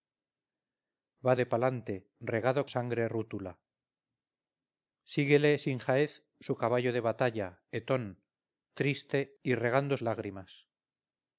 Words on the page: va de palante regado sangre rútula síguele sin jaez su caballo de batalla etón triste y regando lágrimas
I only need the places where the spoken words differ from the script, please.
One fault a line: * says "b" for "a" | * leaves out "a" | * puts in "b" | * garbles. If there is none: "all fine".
all fine